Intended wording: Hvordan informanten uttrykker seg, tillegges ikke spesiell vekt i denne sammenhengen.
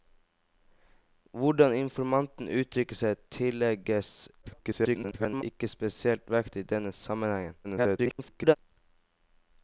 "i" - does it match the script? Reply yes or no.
yes